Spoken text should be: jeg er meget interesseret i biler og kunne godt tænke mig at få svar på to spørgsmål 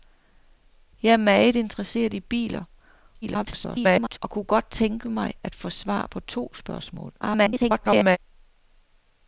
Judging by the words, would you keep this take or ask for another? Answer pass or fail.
fail